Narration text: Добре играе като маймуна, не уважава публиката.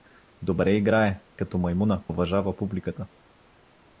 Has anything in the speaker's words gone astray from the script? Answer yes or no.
yes